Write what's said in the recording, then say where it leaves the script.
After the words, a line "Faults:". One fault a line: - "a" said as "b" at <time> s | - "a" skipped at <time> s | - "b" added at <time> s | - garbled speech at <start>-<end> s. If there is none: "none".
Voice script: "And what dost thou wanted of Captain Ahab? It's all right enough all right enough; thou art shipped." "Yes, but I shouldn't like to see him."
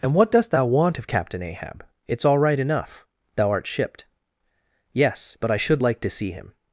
"And what dost thou want of Captain Ahab? It's all right enough; thou art shipped." "Yes, but I should like to see him."
Faults:
- "wanted" said as "want" at 0.7 s
- "all right enough" skipped at 3.0 s
- "shouldn't" said as "should" at 5.6 s